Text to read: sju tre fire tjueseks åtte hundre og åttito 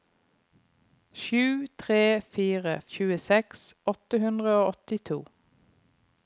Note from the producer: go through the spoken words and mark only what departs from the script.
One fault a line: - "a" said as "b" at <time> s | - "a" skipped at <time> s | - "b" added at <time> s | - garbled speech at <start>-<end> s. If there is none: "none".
none